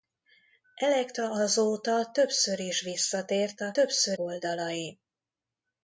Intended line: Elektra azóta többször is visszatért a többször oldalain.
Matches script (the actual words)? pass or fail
pass